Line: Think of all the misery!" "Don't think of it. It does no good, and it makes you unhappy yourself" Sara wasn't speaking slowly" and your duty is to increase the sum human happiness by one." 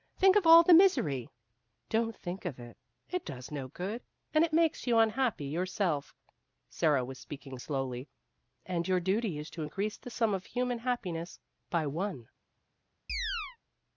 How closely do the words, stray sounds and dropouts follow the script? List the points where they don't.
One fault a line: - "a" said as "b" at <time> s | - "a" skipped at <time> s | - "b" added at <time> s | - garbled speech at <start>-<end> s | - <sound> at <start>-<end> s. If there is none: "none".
- "wasn't" said as "was" at 7.0 s
- "of" added at 10.3 s
- chirp at 13.1-13.6 s